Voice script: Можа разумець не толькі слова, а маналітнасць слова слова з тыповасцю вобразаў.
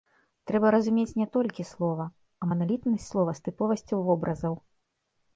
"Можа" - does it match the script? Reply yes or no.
no